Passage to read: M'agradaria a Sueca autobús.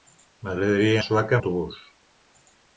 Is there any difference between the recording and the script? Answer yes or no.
no